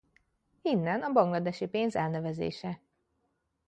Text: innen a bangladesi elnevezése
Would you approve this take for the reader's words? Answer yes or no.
no